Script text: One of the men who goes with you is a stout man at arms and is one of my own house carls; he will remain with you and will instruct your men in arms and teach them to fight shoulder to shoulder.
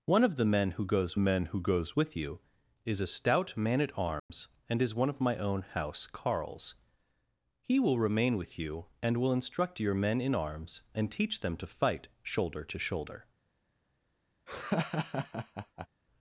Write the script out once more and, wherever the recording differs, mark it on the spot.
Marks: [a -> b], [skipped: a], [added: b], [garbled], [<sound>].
One of the men who goes [added: men who goes] with you is a stout man at arms [dropout] and is one of my own house carls; he will remain with you and will instruct your men in arms and teach them to fight shoulder to shoulder. [laugh]